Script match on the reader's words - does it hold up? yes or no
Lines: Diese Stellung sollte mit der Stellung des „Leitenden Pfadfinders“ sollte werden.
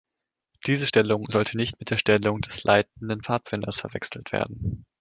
no